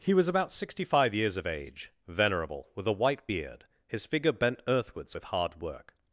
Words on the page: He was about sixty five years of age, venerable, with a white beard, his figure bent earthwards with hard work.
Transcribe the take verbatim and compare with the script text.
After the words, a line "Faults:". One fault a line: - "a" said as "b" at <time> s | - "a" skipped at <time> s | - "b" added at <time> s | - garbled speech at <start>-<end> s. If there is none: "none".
He was about sixty five years of age, venerable, with a white beard, his figure bent earthwards with hard work.
Faults:
none